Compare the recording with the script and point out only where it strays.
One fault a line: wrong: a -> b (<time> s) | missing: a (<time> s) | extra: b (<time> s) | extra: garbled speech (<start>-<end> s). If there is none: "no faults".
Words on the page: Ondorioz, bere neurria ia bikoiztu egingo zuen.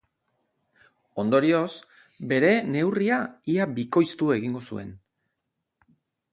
no faults